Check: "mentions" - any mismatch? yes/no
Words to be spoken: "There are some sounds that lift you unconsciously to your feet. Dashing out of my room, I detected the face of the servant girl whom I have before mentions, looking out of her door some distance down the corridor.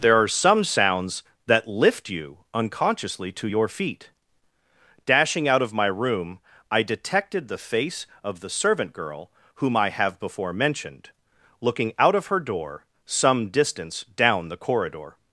yes